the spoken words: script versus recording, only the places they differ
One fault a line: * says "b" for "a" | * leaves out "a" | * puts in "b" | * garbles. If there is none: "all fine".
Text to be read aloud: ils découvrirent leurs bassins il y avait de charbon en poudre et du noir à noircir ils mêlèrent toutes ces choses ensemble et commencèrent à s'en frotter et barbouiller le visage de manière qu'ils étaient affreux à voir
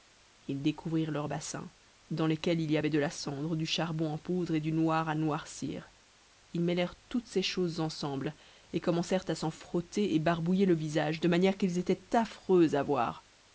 * puts in "dans lesquels"
* puts in "la cendre du"